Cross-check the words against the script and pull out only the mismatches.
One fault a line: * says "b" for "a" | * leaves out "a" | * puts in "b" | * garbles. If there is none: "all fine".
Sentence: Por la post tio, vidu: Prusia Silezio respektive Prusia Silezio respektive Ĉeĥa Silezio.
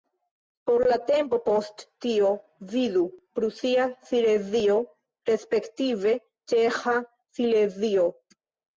* puts in "tempo"
* leaves out "Prusia Silezio respektive"